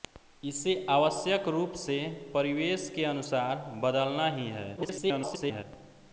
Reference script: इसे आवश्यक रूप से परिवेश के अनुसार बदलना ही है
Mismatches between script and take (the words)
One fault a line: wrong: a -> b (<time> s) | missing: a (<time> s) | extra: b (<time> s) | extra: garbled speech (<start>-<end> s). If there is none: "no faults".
extra: garbled speech (4.8-5.6 s)